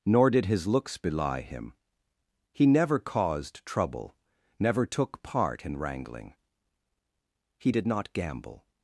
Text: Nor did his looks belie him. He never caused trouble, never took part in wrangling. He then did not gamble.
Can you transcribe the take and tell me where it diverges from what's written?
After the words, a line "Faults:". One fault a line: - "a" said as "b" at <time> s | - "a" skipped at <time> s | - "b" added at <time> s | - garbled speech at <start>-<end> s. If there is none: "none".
Nor did his looks belie him. He never caused trouble, never took part in wrangling. He did not gamble.
Faults:
- "then" skipped at 7.7 s